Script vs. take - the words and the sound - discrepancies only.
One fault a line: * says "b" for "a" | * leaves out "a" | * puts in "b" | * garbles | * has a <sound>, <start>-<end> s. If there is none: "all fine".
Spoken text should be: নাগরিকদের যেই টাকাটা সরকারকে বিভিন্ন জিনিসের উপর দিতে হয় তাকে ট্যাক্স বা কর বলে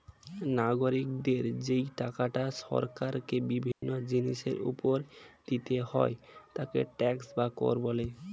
* has a dropout, 3.7-3.8 s